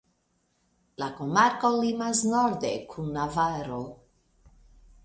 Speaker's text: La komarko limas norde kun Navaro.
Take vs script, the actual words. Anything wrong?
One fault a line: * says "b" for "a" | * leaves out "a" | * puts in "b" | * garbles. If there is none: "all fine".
all fine